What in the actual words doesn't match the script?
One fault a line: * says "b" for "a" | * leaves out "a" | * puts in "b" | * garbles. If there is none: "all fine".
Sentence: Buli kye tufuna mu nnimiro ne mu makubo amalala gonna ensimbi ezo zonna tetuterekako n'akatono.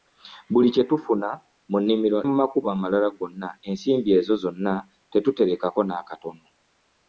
* leaves out "ne"